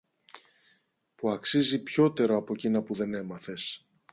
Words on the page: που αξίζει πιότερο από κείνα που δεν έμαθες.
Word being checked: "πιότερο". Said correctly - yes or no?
yes